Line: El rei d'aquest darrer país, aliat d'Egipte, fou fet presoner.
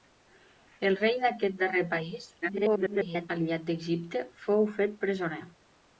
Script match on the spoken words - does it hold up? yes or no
no